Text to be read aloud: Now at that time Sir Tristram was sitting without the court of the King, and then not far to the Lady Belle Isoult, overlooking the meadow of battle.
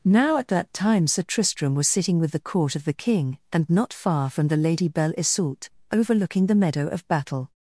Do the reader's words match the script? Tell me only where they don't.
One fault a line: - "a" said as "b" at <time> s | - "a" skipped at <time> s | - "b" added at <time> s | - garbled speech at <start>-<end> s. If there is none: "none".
- "without" said as "with" at 2.2 s
- "then" skipped at 3.7 s
- "to" said as "from" at 4.3 s